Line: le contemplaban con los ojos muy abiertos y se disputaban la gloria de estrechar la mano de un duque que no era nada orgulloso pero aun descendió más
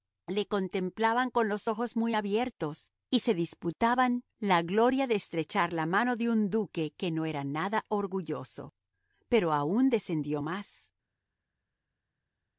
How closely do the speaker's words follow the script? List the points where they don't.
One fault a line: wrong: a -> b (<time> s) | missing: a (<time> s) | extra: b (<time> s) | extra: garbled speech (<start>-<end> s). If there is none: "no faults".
no faults